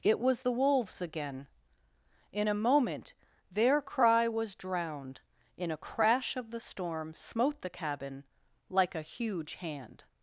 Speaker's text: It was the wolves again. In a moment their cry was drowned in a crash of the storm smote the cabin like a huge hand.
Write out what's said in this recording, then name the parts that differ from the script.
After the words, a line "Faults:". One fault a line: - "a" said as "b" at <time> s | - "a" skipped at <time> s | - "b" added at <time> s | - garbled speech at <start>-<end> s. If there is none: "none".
It was the wolves again. In a moment their cry was drowned in a crash of the storm smote the cabin like a huge hand.
Faults:
none